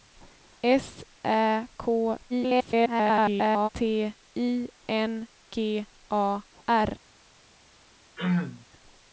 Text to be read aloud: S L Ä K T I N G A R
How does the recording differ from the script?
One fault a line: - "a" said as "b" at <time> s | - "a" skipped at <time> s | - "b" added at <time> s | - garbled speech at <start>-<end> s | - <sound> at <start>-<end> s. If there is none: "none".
- "L" skipped at 1.1 s
- garbled speech at 2.3-3.7 s
- throat clearing at 8.2-8.7 s